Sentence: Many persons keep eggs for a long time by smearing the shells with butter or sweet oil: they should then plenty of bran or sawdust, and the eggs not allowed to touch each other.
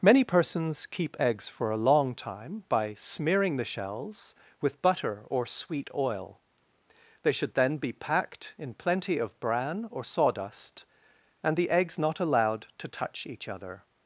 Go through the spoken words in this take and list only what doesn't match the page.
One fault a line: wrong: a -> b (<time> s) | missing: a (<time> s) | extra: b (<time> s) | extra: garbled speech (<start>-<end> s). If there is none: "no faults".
extra: be packed in (7.8 s)